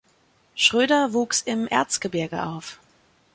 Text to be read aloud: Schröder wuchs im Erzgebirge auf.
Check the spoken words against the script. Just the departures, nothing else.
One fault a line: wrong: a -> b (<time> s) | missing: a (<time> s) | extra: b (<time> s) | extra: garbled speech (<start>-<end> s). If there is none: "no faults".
no faults